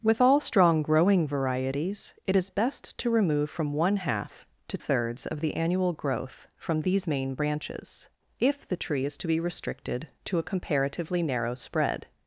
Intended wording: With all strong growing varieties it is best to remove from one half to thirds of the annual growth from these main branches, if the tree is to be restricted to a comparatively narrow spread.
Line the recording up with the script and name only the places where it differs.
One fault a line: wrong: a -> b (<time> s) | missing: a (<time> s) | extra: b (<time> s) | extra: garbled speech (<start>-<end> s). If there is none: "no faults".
no faults